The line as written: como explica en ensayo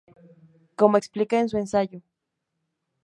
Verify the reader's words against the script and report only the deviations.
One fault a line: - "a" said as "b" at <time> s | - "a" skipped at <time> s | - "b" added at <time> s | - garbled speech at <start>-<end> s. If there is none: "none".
- "su" added at 1.5 s